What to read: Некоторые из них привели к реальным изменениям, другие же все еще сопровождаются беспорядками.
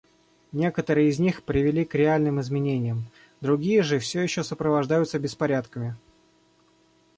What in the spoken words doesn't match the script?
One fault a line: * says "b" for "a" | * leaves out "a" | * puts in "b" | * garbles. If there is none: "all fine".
all fine